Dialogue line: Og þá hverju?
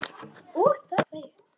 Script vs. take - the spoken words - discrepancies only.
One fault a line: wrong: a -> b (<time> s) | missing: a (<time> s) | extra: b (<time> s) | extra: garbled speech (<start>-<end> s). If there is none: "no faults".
no faults